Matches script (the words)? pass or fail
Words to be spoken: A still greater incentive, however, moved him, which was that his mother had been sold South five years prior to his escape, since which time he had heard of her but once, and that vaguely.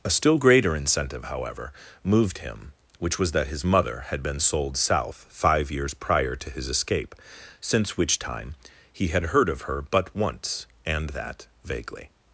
pass